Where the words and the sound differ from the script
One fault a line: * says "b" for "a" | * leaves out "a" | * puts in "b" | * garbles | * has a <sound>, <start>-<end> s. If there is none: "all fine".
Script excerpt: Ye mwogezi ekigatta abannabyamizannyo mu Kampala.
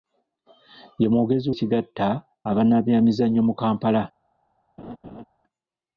* has a laugh, 4.8-5.2 s